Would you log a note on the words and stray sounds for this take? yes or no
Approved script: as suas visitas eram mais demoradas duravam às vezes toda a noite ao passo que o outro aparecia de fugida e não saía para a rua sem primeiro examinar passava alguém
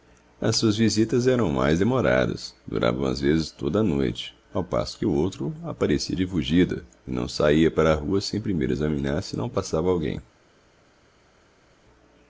yes